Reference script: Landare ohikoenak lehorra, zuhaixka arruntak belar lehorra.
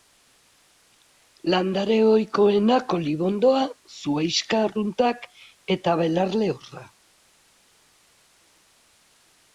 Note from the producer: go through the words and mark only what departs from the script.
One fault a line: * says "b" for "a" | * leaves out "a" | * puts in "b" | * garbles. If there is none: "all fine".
* says "olibondoa" for "lehorra"
* puts in "eta"